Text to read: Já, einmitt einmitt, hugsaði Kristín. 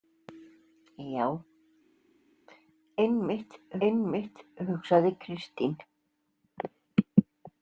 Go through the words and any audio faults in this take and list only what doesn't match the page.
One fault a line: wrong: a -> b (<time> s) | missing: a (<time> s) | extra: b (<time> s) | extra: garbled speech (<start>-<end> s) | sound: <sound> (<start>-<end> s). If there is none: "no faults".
no faults